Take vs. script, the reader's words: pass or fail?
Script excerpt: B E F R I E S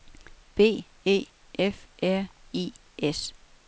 fail